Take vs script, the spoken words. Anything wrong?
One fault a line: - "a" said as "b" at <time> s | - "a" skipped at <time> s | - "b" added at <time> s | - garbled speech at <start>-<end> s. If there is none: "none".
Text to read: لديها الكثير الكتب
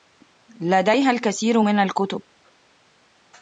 - "من" added at 1.6 s